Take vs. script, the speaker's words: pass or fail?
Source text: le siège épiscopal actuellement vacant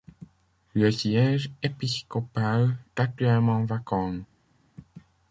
pass